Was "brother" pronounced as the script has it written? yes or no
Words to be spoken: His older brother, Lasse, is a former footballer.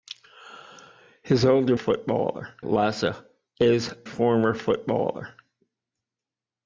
no